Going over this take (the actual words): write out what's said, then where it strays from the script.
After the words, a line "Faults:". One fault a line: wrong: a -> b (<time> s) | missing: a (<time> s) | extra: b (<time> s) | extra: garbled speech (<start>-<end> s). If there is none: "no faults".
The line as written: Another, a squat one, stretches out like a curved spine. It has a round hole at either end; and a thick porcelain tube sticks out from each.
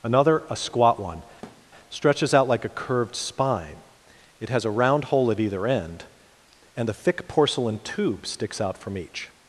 Another, a squat one, stretches out like a curved spine. It has a round hole at either end; and a thick porcelain tube sticks out from each.
Faults:
no faults